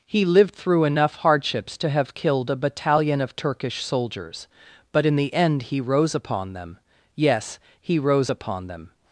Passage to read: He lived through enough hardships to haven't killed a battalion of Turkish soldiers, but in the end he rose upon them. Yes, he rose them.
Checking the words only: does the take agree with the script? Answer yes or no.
no